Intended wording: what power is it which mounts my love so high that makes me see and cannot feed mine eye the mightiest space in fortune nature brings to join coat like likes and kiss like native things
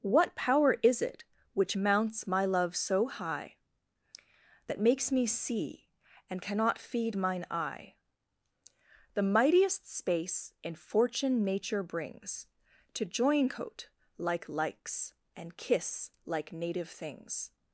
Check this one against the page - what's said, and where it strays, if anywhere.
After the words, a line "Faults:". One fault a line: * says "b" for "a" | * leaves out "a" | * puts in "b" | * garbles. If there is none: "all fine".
what power is it which mounts my love so high that makes me see and cannot feed mine eye the mightiest space in fortune nature brings to join coat like likes and kiss like native things
Faults:
all fine